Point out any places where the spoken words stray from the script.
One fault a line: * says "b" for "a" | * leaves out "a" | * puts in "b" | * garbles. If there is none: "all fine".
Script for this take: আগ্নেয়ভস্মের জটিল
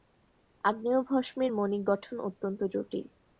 * puts in "মণিক গঠন অত্যন্ত"